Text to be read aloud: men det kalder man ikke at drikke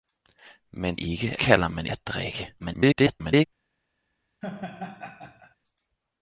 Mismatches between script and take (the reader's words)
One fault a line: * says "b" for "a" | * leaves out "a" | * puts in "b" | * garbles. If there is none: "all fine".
* says "ikke" for "det"
* leaves out "ikke"
* garbles